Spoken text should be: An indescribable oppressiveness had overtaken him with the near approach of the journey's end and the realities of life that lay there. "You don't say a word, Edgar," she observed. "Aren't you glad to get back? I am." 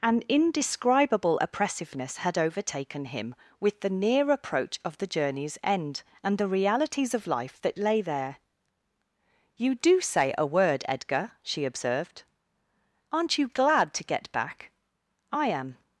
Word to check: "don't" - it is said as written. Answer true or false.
false